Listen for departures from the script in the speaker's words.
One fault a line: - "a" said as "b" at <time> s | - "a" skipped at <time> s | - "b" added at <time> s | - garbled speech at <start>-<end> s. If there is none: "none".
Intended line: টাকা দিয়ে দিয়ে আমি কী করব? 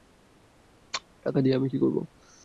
- "দিয়ে" skipped at 1.6 s